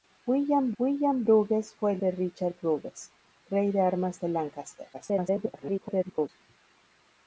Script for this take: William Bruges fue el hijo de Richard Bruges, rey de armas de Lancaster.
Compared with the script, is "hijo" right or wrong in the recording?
wrong